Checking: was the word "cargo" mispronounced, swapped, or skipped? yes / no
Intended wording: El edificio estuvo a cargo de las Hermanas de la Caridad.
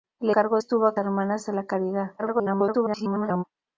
yes